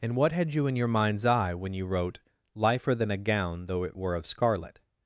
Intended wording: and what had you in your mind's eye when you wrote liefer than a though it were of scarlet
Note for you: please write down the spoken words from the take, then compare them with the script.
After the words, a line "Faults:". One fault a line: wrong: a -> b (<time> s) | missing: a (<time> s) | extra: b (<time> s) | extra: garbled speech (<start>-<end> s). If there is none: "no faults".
and what had you in your mind's eye when you wrote liefer than a gown though it were of scarlet
Faults:
extra: gown (3.2 s)